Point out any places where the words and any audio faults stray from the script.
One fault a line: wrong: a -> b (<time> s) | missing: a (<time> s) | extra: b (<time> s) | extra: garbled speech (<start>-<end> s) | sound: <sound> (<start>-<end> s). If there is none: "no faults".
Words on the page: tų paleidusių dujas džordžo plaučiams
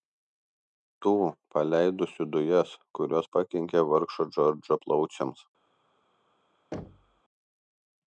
extra: kurios pakenkė vargšo (3.0 s)
sound: thud (6.7-7.2 s)